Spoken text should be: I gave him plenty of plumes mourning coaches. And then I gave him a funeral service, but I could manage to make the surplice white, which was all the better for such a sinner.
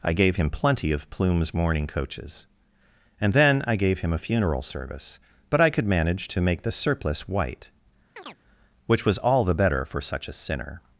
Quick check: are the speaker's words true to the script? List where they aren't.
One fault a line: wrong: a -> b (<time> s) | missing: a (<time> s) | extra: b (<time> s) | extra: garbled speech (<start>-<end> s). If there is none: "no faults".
no faults